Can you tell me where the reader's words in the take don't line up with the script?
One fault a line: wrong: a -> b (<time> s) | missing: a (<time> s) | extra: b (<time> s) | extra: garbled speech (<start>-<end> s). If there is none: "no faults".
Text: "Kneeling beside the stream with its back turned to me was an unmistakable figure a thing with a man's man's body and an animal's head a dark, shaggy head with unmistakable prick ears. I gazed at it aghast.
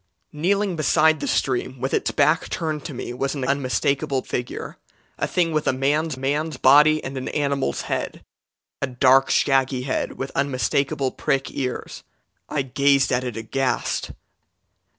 no faults